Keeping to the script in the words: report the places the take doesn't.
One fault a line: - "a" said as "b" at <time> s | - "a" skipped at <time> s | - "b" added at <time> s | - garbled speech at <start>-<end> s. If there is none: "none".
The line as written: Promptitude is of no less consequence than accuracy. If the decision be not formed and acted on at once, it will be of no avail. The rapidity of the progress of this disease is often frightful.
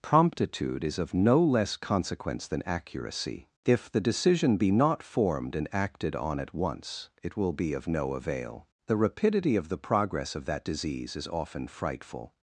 - "this" said as "that" at 10.4 s